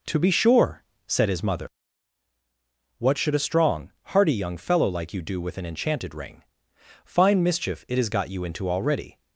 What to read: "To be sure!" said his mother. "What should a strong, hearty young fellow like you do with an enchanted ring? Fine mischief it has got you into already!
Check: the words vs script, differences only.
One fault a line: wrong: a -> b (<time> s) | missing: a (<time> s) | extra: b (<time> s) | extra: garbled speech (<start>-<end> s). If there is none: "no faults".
no faults